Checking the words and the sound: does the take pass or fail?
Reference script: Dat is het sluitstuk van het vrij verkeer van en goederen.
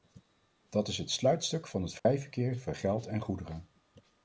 fail